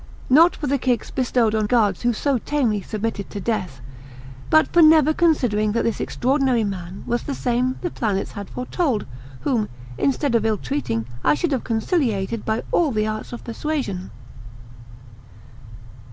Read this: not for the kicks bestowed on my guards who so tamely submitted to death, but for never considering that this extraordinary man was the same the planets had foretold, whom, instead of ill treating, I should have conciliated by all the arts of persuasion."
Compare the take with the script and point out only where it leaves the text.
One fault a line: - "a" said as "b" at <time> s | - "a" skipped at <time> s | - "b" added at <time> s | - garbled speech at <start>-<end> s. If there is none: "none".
- "my" skipped at 1.7 s